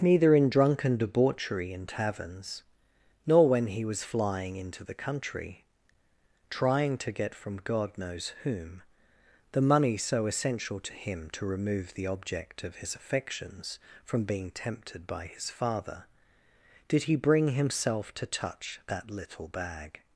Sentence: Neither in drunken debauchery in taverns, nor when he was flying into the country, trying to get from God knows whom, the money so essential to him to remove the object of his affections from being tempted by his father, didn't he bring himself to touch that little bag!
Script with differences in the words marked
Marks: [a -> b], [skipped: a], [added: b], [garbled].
Neither in drunken debauchery in taverns, nor when he was flying into the country, trying to get from God knows whom, the money so essential to him to remove the object of his affections from being tempted by his father, [didn't -> did] he bring himself to touch that little bag!